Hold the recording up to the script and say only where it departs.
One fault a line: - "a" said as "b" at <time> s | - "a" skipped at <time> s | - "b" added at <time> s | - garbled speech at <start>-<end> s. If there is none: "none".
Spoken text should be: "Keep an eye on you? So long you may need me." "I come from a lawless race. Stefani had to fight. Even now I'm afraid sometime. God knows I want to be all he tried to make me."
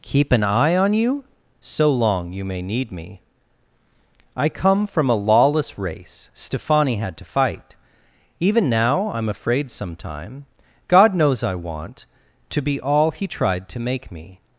none